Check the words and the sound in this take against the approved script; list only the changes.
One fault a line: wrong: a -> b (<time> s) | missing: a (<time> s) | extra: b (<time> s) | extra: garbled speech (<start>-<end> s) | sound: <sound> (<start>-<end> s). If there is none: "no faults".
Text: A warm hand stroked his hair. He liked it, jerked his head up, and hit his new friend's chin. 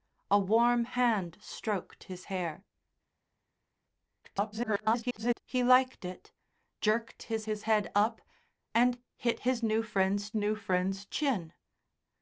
extra: garbled speech (4.2-5.4 s)
extra: his (7.5 s)
extra: new friend's (10.3 s)